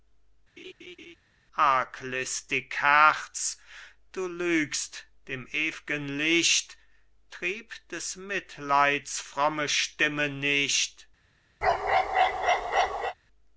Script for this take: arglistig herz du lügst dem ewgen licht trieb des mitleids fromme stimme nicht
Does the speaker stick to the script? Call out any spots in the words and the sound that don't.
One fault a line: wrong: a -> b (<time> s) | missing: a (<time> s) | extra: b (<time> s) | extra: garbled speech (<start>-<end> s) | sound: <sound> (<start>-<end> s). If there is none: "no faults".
sound: laugh (0.6-1.2 s)
sound: bark (11.6-13.1 s)